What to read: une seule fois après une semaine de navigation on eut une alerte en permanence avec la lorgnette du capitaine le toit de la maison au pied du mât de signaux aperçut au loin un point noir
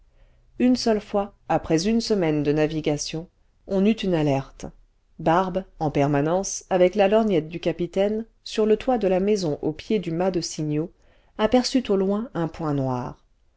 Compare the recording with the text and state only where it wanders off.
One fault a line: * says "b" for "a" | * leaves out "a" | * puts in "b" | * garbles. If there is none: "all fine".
* puts in "barbe"
* puts in "sur"